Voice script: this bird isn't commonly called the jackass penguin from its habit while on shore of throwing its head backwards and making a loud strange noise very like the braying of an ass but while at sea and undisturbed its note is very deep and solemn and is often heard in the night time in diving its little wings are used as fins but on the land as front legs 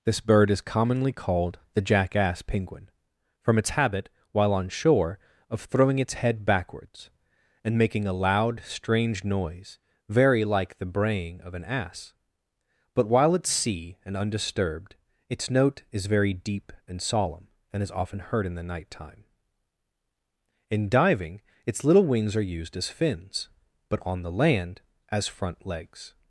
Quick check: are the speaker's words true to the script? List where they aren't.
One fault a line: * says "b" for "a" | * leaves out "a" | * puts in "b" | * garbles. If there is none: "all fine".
* says "is" for "isn't"